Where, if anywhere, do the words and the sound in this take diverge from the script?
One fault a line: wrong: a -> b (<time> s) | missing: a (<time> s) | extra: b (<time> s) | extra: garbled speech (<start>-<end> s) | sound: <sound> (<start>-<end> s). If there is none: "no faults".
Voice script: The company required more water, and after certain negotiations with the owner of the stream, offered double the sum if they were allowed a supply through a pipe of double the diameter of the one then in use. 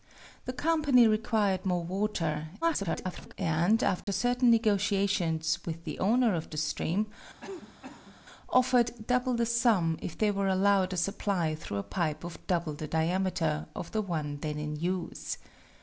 extra: garbled speech (2.6-3.3 s)
sound: dropout (4.0-4.1 s)
sound: cough (7.4-8.2 s)